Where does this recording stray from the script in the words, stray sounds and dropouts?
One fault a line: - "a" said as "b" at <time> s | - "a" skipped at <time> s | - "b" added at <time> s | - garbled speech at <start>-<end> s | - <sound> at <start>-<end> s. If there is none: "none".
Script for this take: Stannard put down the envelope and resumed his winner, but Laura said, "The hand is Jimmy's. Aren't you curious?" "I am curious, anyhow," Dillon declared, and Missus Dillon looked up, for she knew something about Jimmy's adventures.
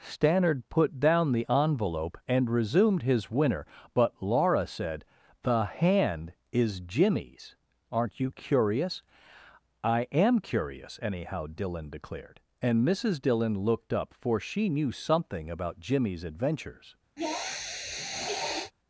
- sniff at 17.2-18.7 s